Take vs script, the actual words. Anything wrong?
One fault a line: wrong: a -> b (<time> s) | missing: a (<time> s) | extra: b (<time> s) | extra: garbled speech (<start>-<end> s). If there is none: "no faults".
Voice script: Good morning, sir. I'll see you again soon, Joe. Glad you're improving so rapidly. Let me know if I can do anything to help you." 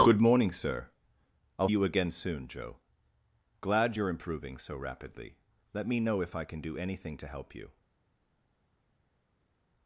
missing: see (1.7 s)